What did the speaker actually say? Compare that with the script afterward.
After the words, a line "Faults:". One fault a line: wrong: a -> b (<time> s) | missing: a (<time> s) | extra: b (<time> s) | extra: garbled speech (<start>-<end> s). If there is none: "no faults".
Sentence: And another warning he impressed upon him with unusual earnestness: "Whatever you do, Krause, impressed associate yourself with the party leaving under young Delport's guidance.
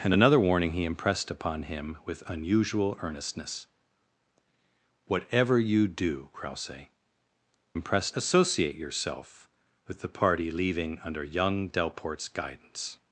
And another warning he impressed upon him with unusual earnestness: "Whatever you do, Krause, impressed associate yourself with the party leaving under young Delport's guidance.
Faults:
no faults